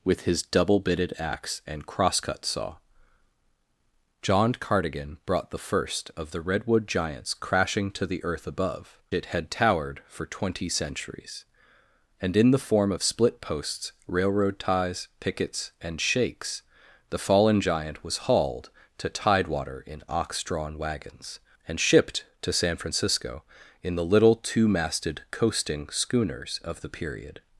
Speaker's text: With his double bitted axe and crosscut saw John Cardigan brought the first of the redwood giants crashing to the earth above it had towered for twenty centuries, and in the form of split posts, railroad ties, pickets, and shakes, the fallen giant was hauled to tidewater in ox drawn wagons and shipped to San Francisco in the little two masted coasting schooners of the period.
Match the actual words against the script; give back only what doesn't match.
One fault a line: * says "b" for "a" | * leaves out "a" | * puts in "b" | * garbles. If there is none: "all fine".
all fine